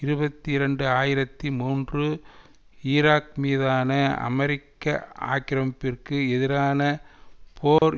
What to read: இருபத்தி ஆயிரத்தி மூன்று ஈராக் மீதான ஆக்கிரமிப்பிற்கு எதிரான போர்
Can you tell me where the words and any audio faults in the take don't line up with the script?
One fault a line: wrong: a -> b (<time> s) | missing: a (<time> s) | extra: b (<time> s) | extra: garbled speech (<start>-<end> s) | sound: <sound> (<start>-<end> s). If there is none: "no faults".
extra: இரண்டு (0.5 s)
extra: அமெரிக்க (4.2 s)
sound: dropout (7.8-7.8 s)